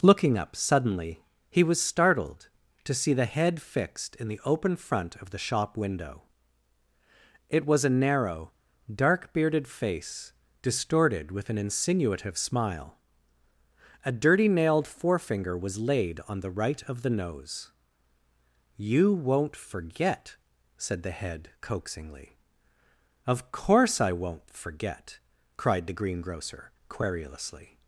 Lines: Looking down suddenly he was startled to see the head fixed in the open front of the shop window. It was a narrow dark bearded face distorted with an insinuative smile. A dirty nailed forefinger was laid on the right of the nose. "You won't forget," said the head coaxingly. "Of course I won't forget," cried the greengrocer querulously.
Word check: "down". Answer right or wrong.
wrong